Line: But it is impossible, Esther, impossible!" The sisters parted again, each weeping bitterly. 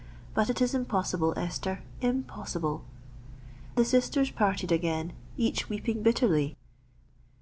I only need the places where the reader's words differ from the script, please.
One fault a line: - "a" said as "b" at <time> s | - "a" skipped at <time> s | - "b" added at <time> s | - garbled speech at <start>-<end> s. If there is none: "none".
none